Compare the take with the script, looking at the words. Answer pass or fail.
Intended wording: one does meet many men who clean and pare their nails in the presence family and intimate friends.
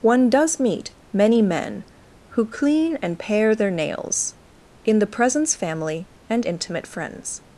pass